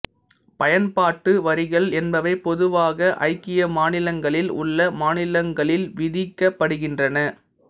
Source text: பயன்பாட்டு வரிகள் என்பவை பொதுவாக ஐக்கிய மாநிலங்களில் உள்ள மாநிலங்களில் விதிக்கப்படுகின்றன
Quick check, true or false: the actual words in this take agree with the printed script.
true